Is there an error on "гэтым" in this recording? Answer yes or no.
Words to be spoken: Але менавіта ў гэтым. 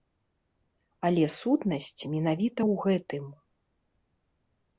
no